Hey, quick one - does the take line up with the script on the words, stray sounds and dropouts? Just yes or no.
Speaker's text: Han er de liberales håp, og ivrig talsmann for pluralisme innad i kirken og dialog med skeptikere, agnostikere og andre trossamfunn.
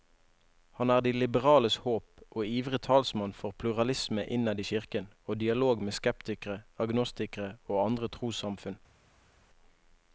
yes